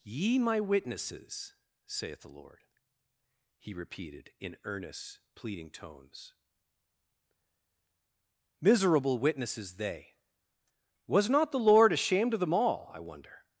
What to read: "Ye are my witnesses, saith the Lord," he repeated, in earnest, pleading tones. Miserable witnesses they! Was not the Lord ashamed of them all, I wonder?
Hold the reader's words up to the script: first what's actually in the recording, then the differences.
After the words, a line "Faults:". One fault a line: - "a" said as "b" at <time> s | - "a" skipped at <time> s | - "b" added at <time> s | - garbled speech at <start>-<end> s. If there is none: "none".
"Ye my witnesses, saith the Lord," he repeated, in earnest, pleading tones. Miserable witnesses they! Was not the Lord ashamed of them all, I wonder?
Faults:
- "are" skipped at 0.4 s